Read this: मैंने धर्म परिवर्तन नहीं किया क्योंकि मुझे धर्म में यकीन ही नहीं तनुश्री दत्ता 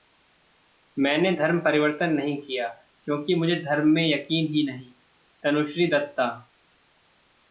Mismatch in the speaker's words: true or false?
false